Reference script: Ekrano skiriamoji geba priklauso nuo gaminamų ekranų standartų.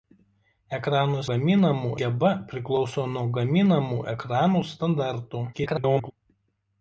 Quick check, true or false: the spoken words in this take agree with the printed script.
false